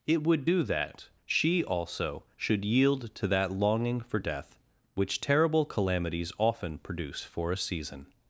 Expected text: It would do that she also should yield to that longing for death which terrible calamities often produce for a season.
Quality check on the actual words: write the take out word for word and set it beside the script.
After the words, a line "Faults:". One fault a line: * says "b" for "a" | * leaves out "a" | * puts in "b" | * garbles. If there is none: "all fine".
It would do that she also should yield to that longing for death which terrible calamities often produce for a season.
Faults:
all fine